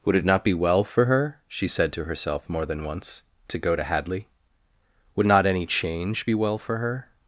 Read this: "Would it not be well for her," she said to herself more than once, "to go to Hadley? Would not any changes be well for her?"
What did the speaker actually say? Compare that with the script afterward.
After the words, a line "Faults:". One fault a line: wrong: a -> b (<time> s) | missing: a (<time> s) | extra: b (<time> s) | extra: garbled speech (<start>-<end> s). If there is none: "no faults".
"Would it not be well for her," she said to herself more than once, "to go to Hadley? Would not any change be well for her?"
Faults:
wrong: changes -> change (5.7 s)